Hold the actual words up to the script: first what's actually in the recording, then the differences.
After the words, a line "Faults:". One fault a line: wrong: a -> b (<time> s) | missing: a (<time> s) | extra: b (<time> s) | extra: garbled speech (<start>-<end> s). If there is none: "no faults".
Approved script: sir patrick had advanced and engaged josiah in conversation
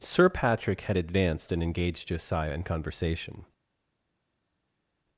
sir patrick had advanced and engaged josiah in conversation
Faults:
no faults